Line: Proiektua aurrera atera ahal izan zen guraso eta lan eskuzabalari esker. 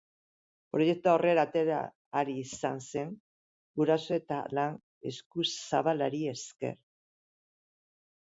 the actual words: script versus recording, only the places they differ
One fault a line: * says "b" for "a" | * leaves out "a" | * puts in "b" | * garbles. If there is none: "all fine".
all fine